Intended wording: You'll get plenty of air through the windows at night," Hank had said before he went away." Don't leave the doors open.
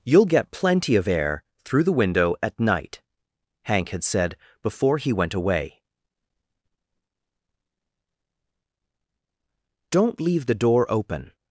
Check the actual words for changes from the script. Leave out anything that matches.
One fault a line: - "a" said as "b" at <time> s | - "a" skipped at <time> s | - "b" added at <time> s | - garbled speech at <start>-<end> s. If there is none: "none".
- "windows" said as "window" at 1.9 s
- "doors" said as "door" at 10.6 s